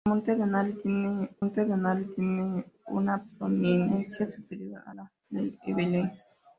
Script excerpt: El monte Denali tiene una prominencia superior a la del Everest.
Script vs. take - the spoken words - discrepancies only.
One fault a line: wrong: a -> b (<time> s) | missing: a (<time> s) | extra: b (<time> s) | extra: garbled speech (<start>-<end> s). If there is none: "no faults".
extra: monte Denali tiene (1.4 s)